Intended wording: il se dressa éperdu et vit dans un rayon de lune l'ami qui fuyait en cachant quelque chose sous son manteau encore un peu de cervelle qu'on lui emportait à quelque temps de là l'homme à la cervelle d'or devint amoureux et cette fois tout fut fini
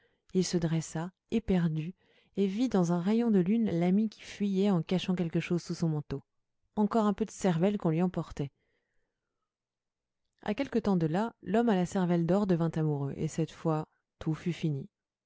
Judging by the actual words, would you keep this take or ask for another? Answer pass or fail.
pass